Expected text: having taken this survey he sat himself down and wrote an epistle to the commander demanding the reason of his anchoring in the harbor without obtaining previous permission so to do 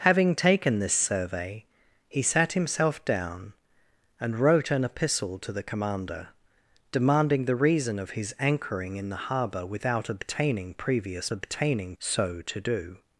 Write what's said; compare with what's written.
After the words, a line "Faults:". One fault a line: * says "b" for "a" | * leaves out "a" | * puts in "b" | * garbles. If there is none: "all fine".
having taken this survey he sat himself down and wrote an epistle to the commander demanding the reason of his anchoring in the harbor without obtaining previous obtaining so to do
Faults:
* says "obtaining" for "permission"